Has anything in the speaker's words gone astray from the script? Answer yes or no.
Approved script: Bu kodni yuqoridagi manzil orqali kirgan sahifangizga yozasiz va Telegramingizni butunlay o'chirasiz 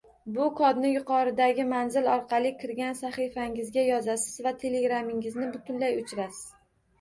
no